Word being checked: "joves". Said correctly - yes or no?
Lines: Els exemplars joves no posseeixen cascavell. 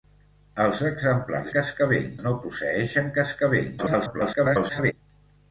no